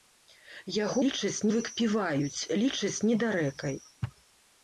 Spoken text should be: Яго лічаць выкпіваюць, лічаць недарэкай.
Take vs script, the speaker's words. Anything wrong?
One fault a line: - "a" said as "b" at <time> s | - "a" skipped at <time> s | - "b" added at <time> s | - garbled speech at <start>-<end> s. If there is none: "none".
none